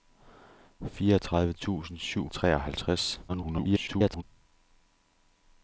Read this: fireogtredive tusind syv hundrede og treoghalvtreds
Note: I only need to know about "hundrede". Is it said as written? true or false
false